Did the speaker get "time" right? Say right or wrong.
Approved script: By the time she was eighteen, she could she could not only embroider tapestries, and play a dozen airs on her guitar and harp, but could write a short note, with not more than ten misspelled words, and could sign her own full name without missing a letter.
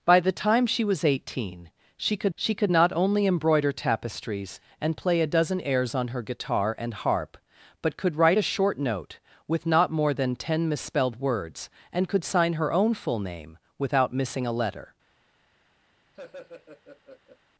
right